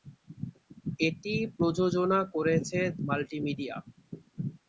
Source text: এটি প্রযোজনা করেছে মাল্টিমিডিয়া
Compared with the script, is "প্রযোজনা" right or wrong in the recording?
right